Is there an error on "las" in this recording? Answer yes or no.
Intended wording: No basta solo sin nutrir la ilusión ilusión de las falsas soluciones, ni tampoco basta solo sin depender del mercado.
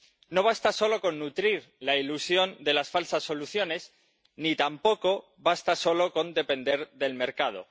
no